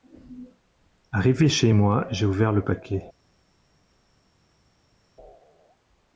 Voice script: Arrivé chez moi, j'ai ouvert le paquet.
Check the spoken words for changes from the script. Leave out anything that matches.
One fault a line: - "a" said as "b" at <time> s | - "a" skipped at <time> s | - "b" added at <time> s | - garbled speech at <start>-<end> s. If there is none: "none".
none